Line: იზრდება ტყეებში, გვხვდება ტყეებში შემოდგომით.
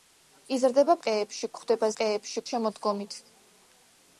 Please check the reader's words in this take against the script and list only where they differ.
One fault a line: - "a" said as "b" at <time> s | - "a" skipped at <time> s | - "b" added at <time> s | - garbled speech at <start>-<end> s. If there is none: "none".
none